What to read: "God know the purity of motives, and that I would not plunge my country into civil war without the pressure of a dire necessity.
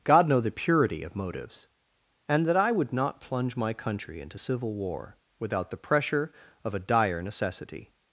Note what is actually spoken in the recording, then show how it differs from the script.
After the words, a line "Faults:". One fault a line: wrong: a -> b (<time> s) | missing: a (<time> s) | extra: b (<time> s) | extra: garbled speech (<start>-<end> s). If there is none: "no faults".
"God know the purity of motives, and that I would not plunge my country into civil war without the pressure of a dire necessity.
Faults:
no faults